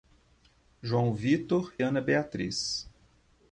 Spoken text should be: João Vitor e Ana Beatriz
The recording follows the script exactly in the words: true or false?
false